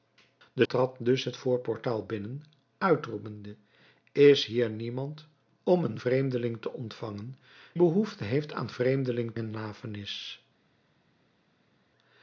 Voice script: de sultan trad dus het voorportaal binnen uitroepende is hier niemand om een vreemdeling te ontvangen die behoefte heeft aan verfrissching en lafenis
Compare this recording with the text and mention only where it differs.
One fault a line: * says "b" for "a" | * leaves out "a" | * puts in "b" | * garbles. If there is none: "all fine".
* leaves out "sultan"
* leaves out "die"
* says "vreemdeling" for "verfrissching"